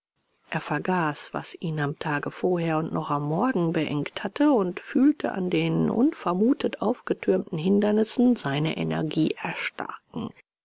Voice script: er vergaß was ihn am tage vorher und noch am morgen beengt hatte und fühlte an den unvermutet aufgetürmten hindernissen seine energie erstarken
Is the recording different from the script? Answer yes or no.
no